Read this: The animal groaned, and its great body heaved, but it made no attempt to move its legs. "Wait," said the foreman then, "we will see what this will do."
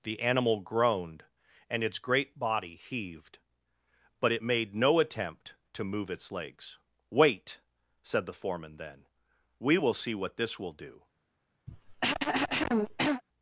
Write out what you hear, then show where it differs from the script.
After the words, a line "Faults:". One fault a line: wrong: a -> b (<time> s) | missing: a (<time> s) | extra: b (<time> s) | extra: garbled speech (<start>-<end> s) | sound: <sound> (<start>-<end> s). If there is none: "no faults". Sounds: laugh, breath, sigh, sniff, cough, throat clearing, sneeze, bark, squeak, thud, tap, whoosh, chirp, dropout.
The animal groaned, and its great body heaved, but it made no attempt to move its legs. "Wait," said the foreman then, "we will see what this will do."
Faults:
sound: cough (11.7-13.2 s)